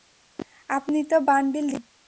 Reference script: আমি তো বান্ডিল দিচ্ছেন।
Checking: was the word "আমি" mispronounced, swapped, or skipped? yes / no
yes